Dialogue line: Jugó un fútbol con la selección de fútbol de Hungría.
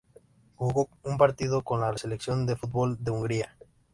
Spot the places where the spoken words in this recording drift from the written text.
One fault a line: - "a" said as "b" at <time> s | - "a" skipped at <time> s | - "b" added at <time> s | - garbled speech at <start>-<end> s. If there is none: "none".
- "fútbol" said as "partido" at 1.2 s